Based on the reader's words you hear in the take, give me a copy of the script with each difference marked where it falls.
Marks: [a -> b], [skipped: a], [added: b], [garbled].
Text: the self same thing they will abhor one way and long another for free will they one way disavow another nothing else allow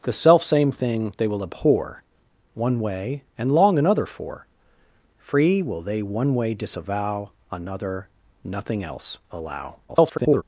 the self same thing they will abhor one way and long another for free will they one way disavow another nothing else allow [garbled]